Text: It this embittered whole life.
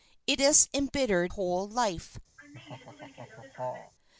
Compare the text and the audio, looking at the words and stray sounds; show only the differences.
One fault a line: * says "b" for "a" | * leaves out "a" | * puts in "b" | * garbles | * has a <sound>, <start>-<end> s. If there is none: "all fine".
* has a laugh, 2.4-3.9 s